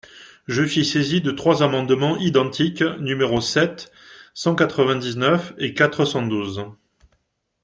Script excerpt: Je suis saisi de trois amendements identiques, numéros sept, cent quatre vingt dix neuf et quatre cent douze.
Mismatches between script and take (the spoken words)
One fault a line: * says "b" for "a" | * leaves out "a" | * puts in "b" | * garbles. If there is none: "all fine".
all fine